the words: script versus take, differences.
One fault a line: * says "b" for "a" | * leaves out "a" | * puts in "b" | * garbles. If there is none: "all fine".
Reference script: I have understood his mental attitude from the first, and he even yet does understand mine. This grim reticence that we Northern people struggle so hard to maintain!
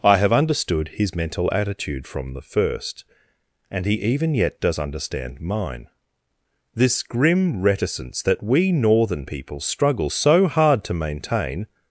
all fine